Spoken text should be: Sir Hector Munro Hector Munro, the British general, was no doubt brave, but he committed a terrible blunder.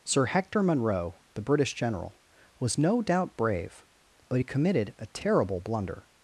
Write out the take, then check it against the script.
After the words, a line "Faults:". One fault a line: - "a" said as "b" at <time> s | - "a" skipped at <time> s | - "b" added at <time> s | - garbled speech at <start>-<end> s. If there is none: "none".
Sir Hector Munro, the British general, was no doubt brave, but he committed a terrible blunder.
Faults:
- "Hector Munro" skipped at 1.1 s